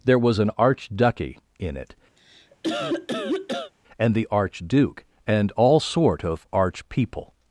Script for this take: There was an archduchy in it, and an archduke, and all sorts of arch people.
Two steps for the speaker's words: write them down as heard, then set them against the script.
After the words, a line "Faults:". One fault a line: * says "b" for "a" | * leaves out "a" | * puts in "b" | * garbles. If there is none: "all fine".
There was an archduchy in it, and the archduke, and all sort of arch people.
Faults:
* says "the" for "an"
* says "sort" for "sorts"